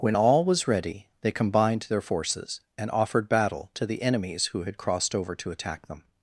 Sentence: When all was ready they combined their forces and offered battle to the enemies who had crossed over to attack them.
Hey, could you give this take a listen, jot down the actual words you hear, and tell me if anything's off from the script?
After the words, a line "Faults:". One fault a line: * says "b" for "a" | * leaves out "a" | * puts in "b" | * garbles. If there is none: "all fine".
When all was ready they combined their forces and offered battle to the enemies who had crossed over to attack them.
Faults:
all fine